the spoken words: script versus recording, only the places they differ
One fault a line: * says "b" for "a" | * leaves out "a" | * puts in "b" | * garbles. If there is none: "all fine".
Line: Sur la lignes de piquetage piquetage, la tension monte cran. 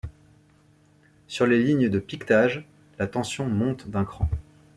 * says "les" for "la"
* leaves out "piquetage"
* puts in "d'un"